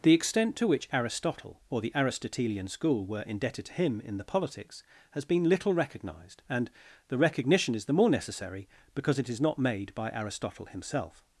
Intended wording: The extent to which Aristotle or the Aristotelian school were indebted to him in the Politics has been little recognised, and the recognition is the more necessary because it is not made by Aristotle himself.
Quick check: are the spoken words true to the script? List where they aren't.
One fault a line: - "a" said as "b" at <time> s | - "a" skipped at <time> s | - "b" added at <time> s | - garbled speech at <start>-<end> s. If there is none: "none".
none